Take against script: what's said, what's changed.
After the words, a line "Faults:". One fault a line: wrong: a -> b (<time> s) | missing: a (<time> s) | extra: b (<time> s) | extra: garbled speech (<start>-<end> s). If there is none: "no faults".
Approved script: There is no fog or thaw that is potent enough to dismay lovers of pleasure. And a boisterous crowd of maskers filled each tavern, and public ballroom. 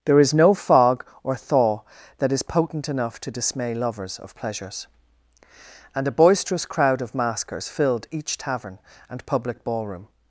There is no fog or thaw that is potent enough to dismay lovers of pleasures. And a boisterous crowd of maskers filled each tavern, and public ballroom.
Faults:
wrong: pleasure -> pleasures (4.3 s)